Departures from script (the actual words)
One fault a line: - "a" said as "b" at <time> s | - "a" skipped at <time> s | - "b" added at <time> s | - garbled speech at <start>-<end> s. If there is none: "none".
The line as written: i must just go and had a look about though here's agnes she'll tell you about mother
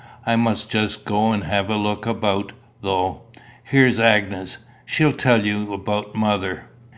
- "had" said as "have" at 1.4 s